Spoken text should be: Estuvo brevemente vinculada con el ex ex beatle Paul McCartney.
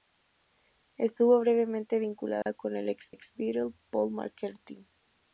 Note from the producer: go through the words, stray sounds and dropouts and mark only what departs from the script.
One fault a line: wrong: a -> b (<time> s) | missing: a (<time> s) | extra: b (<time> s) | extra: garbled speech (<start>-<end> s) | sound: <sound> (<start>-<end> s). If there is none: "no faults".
sound: dropout (2.4-2.5 s)